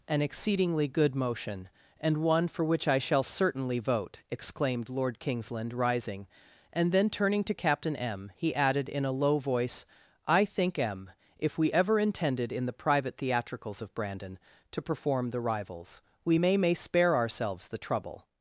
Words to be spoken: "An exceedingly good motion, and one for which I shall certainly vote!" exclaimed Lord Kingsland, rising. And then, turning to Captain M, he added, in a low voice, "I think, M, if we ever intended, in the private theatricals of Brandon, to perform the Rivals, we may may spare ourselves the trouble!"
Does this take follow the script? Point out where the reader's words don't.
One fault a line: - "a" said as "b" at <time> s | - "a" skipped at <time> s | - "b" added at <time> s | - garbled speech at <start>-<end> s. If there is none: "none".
none